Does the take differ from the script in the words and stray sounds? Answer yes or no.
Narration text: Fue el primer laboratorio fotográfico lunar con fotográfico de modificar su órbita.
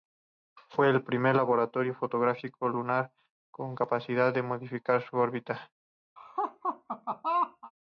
yes